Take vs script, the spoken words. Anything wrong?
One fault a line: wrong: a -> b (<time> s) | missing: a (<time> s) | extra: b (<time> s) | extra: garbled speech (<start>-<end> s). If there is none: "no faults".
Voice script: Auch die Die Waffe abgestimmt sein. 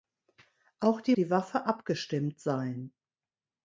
no faults